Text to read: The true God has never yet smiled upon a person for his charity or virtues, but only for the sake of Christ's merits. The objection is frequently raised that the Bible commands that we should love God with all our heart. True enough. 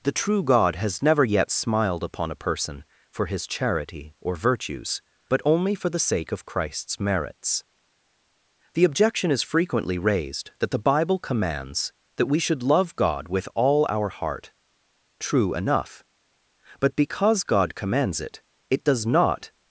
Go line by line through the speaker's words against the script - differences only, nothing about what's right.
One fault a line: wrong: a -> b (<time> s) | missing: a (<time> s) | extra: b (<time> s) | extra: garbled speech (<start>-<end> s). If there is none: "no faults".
extra: But because God commands it it does not (16.8 s)